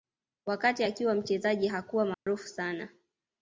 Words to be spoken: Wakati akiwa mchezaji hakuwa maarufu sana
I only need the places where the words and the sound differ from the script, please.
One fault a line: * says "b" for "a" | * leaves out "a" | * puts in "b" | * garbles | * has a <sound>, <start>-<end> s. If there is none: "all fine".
* has a dropout, 2.1-2.3 s